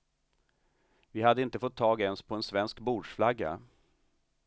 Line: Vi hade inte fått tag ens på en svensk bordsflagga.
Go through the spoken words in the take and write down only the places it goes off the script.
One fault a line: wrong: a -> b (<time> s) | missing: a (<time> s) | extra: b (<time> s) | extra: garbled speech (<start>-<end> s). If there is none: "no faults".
no faults